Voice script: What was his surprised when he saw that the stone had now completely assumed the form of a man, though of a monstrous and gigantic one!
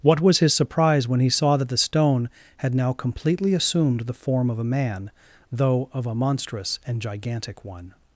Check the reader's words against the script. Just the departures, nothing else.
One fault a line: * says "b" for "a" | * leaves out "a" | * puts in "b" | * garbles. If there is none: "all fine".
* says "surprise" for "surprised"